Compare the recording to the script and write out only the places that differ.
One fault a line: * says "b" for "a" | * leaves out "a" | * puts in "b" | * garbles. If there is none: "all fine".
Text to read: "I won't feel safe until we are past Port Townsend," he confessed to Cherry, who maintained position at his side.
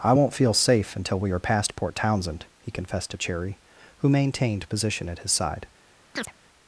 all fine